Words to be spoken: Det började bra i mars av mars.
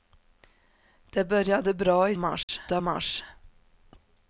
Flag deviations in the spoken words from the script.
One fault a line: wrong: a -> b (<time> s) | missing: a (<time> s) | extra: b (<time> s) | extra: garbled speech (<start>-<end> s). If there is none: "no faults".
no faults